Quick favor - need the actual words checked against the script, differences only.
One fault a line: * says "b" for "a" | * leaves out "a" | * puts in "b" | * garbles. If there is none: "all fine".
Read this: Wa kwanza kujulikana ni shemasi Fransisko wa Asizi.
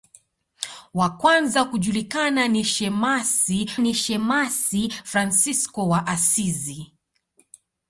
* puts in "ni shemasi"